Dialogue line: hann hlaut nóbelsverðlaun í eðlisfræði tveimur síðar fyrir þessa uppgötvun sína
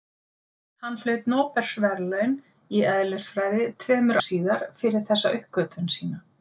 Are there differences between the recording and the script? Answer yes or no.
no